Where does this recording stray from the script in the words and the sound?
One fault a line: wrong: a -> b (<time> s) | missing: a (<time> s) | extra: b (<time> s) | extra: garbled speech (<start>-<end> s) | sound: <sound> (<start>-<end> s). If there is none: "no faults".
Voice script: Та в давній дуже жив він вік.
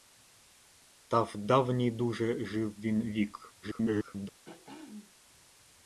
extra: garbled speech (3.6-4.3 s)
sound: throat clearing (4.4-5.1 s)